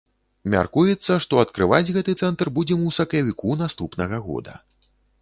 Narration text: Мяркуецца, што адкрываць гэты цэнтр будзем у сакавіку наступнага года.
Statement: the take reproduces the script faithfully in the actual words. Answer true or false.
true